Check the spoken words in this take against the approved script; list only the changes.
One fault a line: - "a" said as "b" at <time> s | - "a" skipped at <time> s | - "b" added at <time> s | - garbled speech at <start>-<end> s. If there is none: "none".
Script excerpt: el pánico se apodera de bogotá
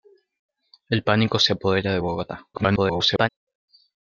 - garbled speech at 2.5-3.3 s